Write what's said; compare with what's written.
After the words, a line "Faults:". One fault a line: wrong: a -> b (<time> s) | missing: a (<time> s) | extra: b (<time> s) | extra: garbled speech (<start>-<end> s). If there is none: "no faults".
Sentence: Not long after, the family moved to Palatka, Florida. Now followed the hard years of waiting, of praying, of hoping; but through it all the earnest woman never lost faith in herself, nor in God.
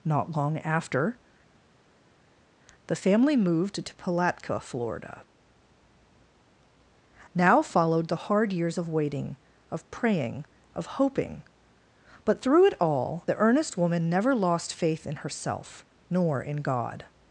Not long after, the family moved to Palatka, Florida. Now followed the hard years of waiting, of praying, of hoping; but through it all the earnest woman never lost faith in herself, nor in God.
Faults:
no faults